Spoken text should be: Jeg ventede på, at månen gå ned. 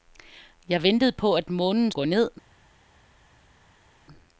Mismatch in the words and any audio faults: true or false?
false